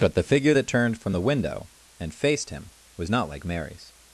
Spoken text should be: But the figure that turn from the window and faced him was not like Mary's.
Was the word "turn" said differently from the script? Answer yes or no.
yes